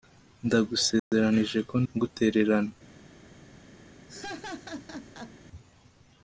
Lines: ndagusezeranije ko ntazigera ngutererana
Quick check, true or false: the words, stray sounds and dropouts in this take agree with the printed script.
false